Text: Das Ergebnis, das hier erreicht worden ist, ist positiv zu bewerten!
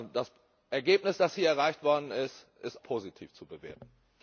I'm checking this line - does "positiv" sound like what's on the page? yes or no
yes